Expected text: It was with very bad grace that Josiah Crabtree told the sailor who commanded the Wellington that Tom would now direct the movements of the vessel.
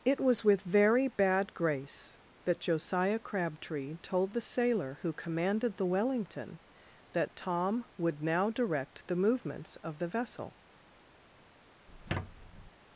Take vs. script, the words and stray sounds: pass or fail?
fail